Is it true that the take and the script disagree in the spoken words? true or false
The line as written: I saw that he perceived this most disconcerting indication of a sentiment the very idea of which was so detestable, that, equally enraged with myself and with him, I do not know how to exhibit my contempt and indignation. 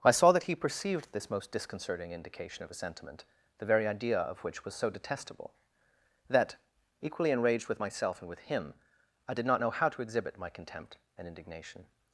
true